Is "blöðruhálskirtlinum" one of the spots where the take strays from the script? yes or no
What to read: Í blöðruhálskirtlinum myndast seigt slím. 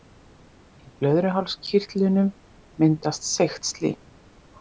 no